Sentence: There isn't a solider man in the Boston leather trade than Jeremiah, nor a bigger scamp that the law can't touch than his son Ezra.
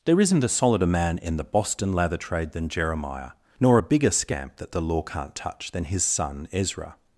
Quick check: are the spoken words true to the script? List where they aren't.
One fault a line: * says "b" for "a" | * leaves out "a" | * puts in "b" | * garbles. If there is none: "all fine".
* says "lather" for "leather"